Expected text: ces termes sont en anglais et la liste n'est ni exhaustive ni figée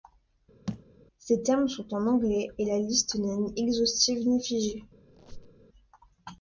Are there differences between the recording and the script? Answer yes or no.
no